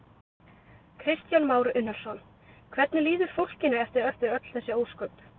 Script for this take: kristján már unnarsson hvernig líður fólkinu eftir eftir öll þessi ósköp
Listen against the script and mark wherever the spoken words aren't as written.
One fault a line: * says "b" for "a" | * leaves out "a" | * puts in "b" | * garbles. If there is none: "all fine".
all fine